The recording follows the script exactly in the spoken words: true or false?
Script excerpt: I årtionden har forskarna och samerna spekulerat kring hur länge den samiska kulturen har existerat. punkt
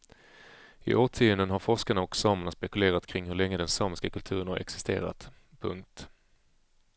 true